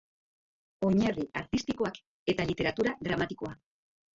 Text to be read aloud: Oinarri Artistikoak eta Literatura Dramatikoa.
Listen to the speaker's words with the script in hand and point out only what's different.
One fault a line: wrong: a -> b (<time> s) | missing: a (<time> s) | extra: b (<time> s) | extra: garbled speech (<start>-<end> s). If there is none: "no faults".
no faults